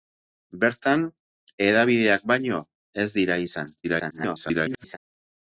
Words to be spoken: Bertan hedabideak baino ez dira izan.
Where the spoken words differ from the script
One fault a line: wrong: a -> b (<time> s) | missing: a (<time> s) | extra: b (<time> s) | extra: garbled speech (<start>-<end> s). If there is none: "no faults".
extra: garbled speech (3.8-5.0 s)